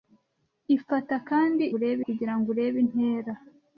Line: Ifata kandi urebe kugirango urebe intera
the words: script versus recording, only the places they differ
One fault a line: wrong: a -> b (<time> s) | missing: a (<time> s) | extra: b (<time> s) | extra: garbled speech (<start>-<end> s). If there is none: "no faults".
no faults